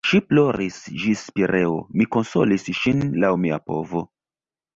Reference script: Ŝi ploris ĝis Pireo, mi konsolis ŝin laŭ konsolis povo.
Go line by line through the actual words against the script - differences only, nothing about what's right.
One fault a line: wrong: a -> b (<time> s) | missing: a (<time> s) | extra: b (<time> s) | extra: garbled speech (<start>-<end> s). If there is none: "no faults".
wrong: konsolis -> mia (3.5 s)